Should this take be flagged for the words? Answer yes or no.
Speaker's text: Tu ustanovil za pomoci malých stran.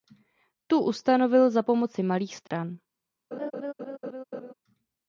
no